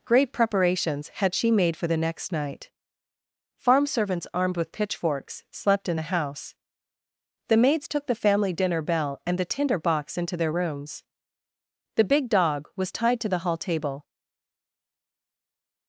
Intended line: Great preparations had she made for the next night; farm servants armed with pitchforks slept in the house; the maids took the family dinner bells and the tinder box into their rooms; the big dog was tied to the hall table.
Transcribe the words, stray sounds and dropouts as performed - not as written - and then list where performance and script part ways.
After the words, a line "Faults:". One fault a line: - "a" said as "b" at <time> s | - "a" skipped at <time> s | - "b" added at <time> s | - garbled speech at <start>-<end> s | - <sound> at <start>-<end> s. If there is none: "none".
Great preparations had she made for the next night; farm servants armed with pitchforks slept in the house; the maids took the family dinner bell and the tinder box into their rooms; the big dog was tied to the hall table.
Faults:
- "bells" said as "bell" at 8.8 s